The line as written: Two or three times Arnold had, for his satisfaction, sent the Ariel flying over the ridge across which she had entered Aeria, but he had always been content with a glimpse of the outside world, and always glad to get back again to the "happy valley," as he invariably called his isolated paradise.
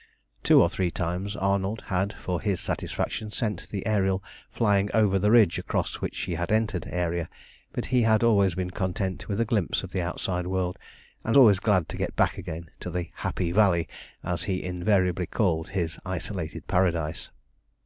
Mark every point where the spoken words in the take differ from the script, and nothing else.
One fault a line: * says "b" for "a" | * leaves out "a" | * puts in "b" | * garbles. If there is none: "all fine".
all fine